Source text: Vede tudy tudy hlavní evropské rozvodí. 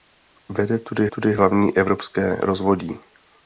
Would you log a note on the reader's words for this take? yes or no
no